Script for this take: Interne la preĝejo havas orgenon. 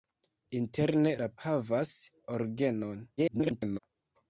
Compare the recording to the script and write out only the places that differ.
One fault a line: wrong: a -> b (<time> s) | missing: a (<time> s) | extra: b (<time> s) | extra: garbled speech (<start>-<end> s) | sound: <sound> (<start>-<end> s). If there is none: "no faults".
missing: preĝejo (1.3 s)
extra: garbled speech (3.2-3.8 s)